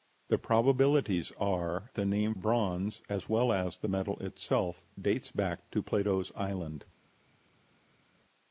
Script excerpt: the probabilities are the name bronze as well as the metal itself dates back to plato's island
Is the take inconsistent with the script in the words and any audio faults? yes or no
no